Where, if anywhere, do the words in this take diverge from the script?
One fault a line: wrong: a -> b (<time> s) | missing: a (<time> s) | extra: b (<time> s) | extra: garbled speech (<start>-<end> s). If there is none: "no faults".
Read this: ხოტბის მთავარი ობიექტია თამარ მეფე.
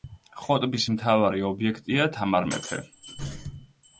no faults